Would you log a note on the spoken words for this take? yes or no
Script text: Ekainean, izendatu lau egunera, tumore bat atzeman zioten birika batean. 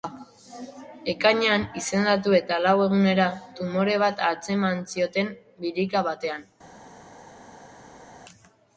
yes